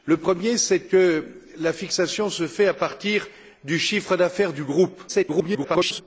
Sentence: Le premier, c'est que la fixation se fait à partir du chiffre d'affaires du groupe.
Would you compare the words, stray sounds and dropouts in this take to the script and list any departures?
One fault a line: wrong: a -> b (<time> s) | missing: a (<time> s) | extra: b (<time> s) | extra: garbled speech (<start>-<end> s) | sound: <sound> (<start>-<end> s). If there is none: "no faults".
extra: garbled speech (5.1-6.0 s)